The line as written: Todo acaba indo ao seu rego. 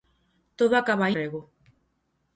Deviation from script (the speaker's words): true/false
true